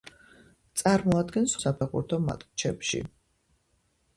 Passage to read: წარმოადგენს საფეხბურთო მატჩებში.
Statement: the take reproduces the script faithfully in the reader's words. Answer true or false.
true